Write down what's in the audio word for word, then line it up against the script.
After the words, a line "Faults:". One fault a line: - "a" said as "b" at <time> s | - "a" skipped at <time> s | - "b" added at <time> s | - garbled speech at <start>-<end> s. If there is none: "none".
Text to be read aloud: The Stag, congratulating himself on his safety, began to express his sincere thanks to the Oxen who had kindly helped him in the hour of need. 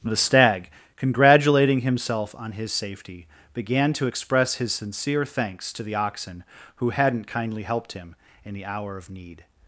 The Stag, congratulating himself on his safety, began to express his sincere thanks to the Oxen who hadn't kindly helped him in the hour of need.
Faults:
- "had" said as "hadn't" at 6.9 s